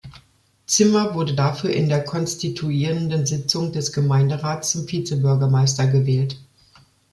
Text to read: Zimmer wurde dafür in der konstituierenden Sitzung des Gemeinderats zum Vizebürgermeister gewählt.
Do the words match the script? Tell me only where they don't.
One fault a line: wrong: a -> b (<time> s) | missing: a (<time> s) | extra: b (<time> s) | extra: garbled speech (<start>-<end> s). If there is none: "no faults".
no faults